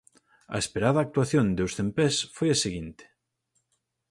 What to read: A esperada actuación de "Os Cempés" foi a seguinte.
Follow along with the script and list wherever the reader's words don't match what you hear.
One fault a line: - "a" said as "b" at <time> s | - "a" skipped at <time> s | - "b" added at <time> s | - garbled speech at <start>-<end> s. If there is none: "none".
none